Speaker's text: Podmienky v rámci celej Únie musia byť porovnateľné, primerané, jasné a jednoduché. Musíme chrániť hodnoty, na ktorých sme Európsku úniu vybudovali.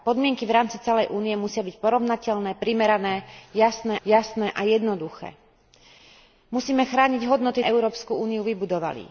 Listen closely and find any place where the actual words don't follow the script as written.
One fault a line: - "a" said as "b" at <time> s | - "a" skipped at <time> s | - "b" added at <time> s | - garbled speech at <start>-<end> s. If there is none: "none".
- "jasné" added at 4.0 s
- "na ktorých sme" skipped at 7.6 s